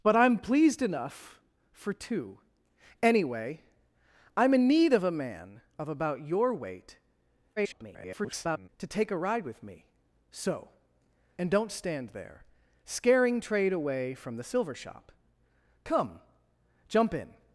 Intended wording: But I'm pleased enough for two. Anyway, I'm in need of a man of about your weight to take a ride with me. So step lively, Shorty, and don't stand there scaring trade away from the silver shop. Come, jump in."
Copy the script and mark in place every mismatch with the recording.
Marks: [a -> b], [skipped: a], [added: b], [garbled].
But I'm pleased enough for two. Anyway, I'm in need of a man of about your weight [garbled] to take a ride with me. So [skipped: step lively, Shorty,] and don't stand there scaring trade away from the silver shop. Come, jump in."